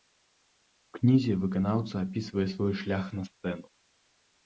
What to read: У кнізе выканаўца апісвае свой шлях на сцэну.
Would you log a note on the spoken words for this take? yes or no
no